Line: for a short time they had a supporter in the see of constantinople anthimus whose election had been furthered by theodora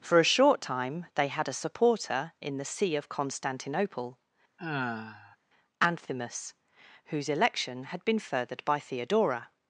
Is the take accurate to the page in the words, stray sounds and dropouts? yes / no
no